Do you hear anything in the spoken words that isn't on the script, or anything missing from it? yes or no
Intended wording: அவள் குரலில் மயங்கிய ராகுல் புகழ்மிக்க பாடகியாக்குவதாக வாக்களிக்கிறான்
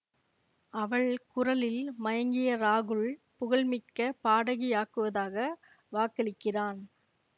no